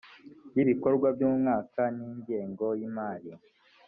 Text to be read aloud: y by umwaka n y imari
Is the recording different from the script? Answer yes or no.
yes